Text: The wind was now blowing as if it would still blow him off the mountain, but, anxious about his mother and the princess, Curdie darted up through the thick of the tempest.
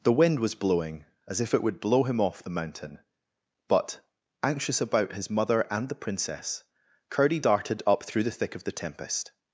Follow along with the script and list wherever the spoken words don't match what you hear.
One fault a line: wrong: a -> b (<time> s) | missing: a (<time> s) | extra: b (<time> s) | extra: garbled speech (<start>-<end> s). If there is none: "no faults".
missing: now (0.6 s)
missing: still (1.8 s)